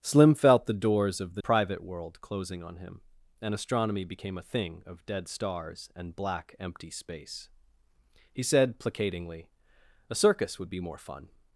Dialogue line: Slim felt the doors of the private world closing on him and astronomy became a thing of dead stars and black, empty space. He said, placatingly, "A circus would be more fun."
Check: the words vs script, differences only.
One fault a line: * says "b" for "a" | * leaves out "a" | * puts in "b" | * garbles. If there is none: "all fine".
all fine